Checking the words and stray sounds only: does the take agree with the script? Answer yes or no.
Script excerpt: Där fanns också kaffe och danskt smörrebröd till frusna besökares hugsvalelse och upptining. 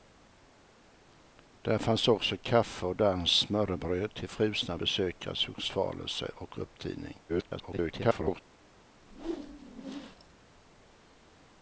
no